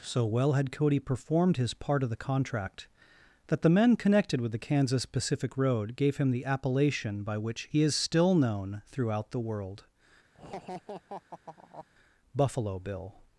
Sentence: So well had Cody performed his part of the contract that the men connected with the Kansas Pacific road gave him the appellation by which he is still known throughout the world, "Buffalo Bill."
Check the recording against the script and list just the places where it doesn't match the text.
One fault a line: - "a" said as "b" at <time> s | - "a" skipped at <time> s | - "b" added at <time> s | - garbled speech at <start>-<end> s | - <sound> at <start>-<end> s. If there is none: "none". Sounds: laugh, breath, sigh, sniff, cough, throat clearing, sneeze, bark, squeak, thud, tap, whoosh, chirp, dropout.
- laugh at 10.3-11.9 s